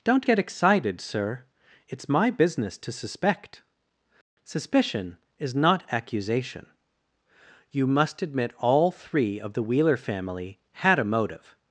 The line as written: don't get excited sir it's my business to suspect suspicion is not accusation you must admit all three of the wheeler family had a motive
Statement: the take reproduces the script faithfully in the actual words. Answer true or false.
true